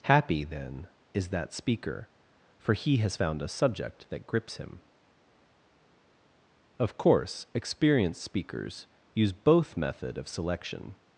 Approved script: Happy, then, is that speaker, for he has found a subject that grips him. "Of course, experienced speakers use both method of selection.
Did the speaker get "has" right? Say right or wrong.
right